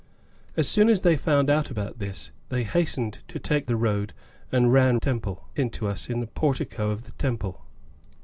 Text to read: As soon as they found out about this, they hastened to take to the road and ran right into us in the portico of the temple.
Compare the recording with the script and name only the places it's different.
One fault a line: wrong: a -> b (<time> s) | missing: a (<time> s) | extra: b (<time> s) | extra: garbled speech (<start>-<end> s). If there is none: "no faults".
missing: to (3.7 s)
wrong: right -> temple (5.0 s)